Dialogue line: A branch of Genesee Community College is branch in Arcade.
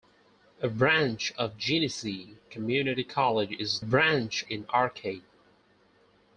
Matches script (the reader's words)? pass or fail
pass